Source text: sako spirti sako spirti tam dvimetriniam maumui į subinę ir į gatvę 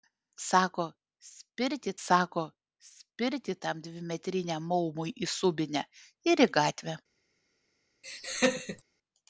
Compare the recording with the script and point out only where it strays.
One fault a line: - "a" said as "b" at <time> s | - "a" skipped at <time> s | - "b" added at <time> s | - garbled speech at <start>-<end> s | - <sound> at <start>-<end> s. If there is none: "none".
- laugh at 8.0-8.8 s